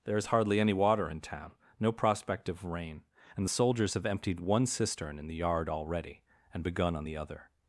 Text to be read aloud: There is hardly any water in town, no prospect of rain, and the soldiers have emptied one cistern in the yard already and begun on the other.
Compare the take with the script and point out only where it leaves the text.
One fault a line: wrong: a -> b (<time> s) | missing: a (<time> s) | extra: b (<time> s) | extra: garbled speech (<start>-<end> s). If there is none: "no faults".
no faults